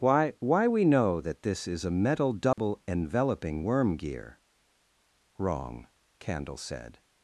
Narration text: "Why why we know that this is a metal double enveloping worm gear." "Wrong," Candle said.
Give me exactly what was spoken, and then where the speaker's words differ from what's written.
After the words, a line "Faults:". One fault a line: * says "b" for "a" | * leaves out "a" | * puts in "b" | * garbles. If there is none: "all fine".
"Why why we know that this is a metal double enveloping worm gear." "Wrong," Candle said.
Faults:
all fine